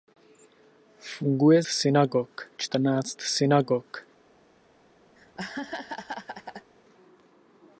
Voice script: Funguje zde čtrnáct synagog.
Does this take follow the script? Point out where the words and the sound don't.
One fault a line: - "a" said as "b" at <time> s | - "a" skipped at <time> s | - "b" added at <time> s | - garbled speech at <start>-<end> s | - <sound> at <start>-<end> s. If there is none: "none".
- "zde" said as "synagog" at 1.7 s
- laugh at 5.2-6.7 s